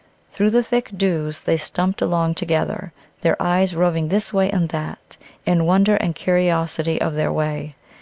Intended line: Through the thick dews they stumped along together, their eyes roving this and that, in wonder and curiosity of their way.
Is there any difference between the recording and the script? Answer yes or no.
yes